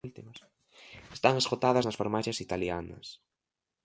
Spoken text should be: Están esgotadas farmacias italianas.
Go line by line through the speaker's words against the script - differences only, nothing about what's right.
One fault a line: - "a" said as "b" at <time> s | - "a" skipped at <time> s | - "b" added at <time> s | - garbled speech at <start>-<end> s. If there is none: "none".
- "nas" added at 1.8 s